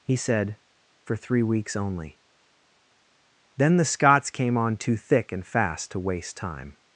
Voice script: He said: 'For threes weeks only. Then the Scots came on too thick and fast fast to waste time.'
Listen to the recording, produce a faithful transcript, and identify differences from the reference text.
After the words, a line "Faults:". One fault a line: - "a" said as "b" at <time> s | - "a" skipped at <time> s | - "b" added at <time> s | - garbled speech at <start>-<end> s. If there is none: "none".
He said: 'For three weeks only. Then the Scots came on too thick and fast to waste time.'
Faults:
- "threes" said as "three" at 1.1 s
- "fast" skipped at 5.9 s